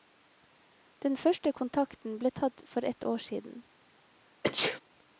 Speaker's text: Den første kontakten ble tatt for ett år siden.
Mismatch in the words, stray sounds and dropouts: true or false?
true